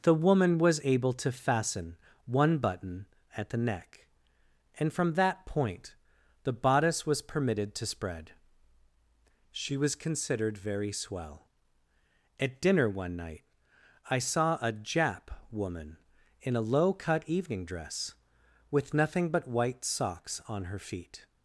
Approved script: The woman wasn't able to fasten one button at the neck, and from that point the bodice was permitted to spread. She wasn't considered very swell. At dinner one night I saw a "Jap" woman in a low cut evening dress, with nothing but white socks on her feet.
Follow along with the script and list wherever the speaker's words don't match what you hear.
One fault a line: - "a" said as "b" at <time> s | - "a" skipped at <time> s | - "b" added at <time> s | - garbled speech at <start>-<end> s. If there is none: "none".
- "wasn't" said as "was" at 0.6 s
- "wasn't" said as "was" at 9.8 s